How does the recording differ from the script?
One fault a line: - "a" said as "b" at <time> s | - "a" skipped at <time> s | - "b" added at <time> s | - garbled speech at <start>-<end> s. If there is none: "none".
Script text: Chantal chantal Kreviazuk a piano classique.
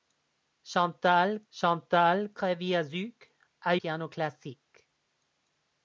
none